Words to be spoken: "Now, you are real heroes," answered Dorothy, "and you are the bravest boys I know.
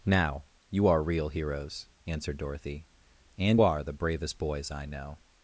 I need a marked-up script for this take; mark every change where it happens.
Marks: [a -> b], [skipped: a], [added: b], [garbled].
"Now, you are real heroes," answered Dorothy, "and [skipped: you] are the bravest boys I know.